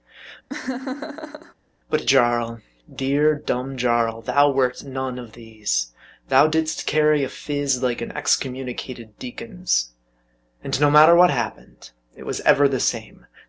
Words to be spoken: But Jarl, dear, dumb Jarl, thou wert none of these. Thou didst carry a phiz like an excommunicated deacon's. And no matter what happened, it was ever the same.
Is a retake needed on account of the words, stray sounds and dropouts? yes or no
yes